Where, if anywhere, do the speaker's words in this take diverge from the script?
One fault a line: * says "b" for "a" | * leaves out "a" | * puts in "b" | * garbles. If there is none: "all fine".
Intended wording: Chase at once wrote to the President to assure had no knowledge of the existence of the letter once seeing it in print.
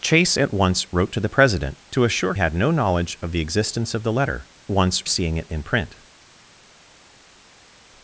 all fine